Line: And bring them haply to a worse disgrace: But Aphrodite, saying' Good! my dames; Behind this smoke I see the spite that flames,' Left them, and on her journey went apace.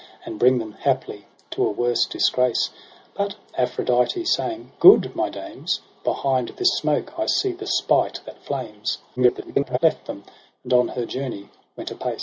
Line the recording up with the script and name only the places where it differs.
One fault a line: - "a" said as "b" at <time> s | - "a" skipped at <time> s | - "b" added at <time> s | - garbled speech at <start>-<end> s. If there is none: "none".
- garbled speech at 9.2-9.8 s